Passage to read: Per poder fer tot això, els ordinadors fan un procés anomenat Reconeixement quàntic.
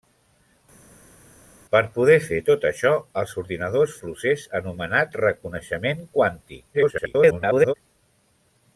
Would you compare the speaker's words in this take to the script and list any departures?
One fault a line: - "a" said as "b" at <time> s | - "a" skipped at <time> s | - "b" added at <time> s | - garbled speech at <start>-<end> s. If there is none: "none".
- "fan un" skipped at 3.9 s
- garbled speech at 6.7-7.7 s